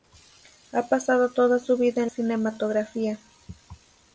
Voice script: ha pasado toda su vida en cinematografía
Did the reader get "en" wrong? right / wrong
right